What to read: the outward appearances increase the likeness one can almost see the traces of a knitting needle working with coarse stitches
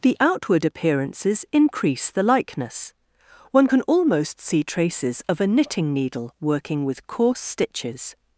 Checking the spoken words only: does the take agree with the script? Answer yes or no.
no